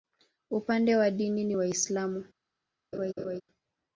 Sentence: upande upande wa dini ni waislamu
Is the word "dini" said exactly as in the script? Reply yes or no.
yes